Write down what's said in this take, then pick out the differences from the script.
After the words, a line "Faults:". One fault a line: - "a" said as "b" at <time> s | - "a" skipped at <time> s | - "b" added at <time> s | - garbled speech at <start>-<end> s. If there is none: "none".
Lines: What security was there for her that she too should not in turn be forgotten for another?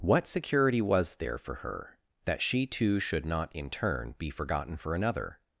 What security was there for her that she too should not in turn be forgotten for another?
Faults:
none